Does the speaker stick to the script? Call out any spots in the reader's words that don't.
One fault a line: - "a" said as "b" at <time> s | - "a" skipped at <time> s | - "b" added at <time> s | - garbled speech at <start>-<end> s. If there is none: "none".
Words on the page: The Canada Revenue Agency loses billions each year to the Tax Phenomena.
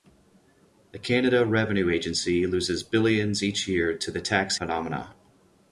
none